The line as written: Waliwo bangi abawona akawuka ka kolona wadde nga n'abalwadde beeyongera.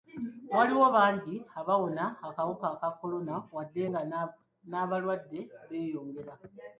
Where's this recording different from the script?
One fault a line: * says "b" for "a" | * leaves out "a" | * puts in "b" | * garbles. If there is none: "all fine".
all fine